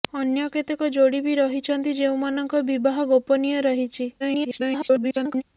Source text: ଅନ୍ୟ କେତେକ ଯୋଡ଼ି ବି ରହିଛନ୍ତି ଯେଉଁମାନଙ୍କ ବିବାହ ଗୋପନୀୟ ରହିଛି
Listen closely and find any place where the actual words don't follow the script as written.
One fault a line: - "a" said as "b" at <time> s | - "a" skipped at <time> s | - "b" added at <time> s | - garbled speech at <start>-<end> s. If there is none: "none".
- garbled speech at 4.2-5.4 s